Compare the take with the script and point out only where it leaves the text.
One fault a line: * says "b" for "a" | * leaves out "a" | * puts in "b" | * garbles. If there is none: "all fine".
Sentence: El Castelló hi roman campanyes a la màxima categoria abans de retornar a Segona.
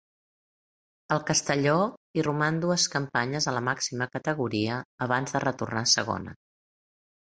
* puts in "dues"